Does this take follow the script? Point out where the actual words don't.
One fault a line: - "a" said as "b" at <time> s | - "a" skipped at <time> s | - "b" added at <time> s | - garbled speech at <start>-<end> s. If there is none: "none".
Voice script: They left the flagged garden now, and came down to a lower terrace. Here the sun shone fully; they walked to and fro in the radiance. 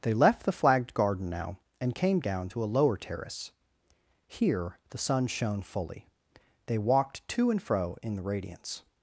none